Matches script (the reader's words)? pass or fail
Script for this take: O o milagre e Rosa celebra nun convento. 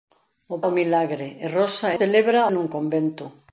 pass